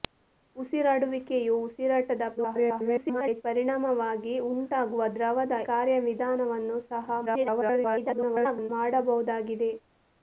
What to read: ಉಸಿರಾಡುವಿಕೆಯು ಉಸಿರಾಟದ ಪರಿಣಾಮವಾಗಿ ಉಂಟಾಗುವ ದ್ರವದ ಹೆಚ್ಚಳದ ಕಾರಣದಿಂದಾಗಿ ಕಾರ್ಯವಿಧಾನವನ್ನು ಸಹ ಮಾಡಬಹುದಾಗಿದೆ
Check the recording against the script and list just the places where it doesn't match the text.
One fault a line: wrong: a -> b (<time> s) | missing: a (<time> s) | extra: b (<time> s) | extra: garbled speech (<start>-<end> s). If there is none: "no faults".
extra: garbled speech (2.4-3.4 s)
missing: ಹೆಚ್ಚಳದ ಕಾರಣದಿಂದಾಗಿ (5.6 s)
extra: garbled speech (7.3-8.7 s)